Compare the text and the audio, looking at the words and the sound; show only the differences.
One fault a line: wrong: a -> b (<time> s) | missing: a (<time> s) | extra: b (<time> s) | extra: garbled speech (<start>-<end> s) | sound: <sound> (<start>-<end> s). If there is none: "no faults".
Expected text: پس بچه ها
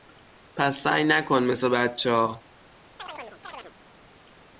extra: سعی نکن مث (0.8 s)
sound: chirp (3.0-3.7 s)